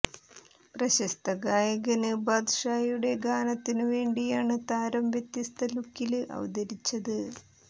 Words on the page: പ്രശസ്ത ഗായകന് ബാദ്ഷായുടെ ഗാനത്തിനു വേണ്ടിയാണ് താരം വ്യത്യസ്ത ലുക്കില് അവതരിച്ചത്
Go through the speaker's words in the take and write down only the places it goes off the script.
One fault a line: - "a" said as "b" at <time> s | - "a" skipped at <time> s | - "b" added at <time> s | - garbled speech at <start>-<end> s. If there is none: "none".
none